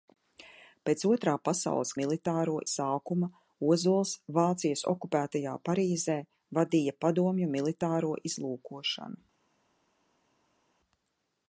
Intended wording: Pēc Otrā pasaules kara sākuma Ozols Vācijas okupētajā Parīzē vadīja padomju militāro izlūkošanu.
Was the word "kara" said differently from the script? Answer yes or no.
yes